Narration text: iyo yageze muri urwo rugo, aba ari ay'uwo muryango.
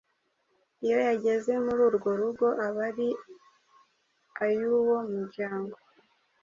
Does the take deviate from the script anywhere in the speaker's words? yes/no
no